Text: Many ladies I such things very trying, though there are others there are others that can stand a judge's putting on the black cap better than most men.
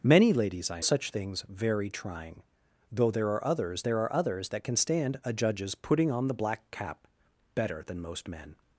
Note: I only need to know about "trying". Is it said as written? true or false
true